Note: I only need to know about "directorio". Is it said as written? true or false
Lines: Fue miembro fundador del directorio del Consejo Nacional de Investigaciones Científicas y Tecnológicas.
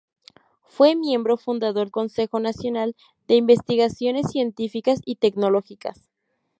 false